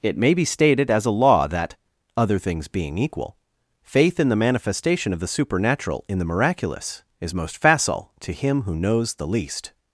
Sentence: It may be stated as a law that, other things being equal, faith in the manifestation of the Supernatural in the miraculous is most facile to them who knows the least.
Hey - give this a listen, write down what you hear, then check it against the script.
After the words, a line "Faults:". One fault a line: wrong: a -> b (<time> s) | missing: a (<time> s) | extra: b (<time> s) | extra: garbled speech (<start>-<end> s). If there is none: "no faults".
It may be stated as a law that, other things being equal, faith in the manifestation of the Supernatural in the miraculous is most facile to him who knows the least.
Faults:
wrong: them -> him (8.3 s)